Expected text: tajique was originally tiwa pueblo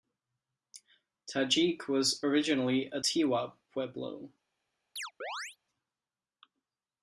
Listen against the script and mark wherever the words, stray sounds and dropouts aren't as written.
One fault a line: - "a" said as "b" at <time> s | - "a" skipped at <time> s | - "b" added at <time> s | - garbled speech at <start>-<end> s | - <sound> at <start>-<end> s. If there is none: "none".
- "a" added at 2.9 s
- chirp at 5.0-5.6 s